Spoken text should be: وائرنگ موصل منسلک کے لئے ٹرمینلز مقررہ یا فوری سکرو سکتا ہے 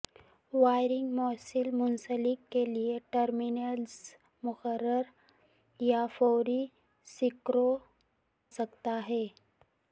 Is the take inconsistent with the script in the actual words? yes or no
no